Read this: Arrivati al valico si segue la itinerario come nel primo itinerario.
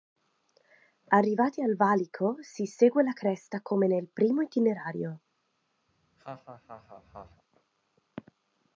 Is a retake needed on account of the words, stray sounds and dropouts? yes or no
yes